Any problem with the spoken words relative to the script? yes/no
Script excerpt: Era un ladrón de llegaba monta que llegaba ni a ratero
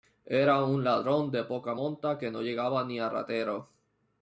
yes